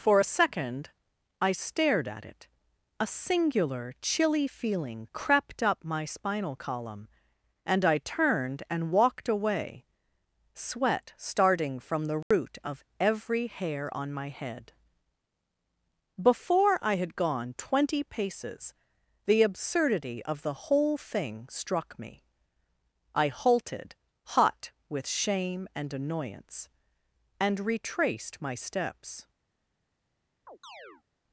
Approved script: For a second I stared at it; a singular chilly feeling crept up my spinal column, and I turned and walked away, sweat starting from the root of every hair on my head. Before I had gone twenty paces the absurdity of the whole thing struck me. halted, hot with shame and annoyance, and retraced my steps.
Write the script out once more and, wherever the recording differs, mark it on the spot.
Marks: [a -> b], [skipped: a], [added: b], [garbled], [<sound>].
For a second I stared at it; a singular chilly feeling crept up my spinal column, and I turned and walked away, sweat starting from the root [dropout] of every hair on my head. Before I had gone twenty paces the absurdity of the whole thing struck me. [added: I] halted, hot with shame and annoyance, and retraced my steps. [chirp]